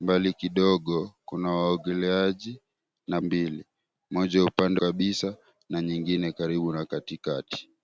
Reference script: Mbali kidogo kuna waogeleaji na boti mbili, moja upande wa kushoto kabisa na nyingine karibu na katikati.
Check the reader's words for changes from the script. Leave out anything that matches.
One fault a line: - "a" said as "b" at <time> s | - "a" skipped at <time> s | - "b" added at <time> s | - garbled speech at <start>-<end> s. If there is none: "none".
- "boti" skipped at 3.2 s
- "wa kushoto" skipped at 4.8 s